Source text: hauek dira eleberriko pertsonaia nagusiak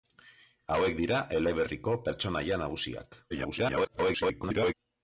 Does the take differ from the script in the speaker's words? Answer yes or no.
yes